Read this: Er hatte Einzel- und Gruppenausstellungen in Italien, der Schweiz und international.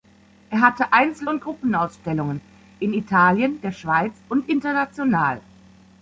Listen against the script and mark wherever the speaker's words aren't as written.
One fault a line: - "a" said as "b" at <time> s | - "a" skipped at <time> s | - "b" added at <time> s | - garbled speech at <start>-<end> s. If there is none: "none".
none